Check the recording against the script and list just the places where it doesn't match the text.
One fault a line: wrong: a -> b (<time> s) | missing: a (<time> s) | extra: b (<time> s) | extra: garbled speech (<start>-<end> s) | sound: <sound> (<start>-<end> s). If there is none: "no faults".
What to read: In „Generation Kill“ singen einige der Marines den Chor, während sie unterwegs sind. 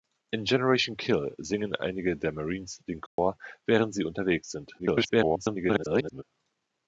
sound: dropout (3.1-3.2 s)
extra: garbled speech (4.8-6.2 s)